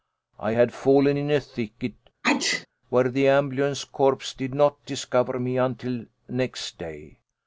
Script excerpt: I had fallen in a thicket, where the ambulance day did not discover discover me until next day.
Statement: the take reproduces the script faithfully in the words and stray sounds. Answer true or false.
false